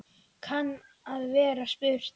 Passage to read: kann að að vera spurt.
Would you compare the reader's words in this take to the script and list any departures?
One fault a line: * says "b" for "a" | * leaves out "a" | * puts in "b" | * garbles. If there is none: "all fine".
* leaves out "að"